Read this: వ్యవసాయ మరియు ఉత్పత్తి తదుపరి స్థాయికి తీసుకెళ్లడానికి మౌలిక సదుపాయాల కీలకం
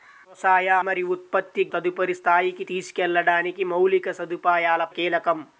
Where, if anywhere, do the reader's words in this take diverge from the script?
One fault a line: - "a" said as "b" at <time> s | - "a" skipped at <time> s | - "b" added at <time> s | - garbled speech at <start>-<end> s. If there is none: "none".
none